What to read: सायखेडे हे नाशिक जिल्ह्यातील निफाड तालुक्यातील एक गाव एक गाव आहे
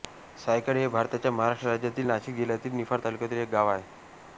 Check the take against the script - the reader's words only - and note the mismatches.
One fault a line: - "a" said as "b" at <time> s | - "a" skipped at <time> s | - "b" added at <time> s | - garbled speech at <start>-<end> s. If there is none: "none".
- "भारताच्या महाराष्ट्र राज्यातील" added at 0.9 s
- "एक गाव" skipped at 3.7 s